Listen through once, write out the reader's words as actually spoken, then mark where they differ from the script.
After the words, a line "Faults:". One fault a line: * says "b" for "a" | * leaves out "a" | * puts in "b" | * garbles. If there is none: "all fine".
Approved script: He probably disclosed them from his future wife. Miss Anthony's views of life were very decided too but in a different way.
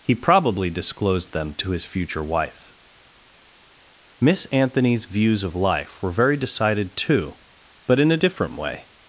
He probably disclosed them to his future wife. Miss Anthony's views of life were very decided too but in a different way.
Faults:
* says "to" for "from"